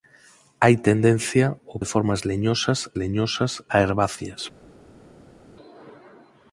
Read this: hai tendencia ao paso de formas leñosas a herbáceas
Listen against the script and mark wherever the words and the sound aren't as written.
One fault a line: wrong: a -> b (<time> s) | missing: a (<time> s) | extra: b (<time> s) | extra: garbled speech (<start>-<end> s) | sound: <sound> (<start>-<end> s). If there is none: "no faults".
missing: paso (1.8 s)
extra: leñosas (3.0 s)